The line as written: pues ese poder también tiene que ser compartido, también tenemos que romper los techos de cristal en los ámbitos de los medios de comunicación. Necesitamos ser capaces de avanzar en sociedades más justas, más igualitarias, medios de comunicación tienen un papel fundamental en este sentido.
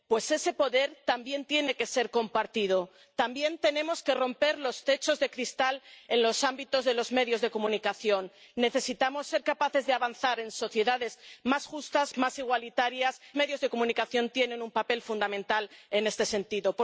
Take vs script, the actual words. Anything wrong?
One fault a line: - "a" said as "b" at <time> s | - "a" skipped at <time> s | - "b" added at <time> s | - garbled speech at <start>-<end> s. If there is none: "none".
none